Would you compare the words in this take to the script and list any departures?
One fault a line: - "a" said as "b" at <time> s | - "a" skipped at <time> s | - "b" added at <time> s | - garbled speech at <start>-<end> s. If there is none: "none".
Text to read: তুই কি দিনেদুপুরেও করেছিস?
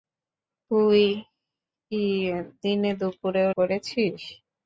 none